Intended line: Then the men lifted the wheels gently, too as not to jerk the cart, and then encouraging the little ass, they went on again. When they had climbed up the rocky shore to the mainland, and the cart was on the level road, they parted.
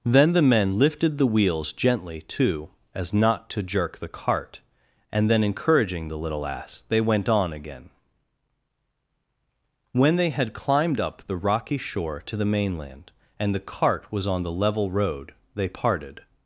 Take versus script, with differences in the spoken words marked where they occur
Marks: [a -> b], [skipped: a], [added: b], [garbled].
Then the men lifted the wheels gently, too as not to jerk the cart, and then encouraging the little ass, they went on again. When they had climbed up the rocky shore to the mainland, and the cart was on the level road, they parted.